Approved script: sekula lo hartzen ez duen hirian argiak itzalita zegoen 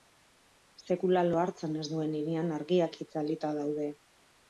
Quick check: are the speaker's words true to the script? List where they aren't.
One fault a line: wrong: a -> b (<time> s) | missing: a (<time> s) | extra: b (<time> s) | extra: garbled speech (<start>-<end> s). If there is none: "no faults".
wrong: zegoen -> daude (3.6 s)